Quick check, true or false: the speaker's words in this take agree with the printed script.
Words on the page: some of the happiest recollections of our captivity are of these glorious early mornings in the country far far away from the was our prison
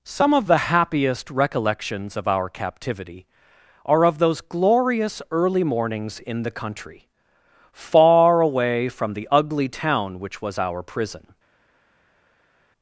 false